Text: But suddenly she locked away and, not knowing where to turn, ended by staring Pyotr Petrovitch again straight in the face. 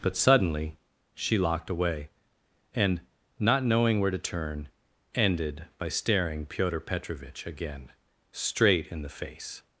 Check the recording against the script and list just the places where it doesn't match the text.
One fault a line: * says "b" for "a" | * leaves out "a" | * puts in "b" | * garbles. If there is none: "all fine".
all fine